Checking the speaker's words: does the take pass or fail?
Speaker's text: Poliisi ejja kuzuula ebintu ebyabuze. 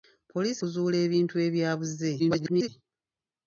fail